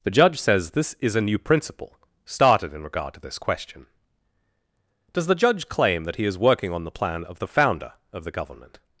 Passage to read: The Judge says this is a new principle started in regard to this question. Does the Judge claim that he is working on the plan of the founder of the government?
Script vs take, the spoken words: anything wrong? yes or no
no